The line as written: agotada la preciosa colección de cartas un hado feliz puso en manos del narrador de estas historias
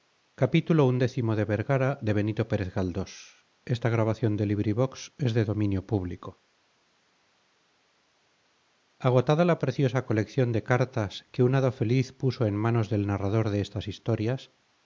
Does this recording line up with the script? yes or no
no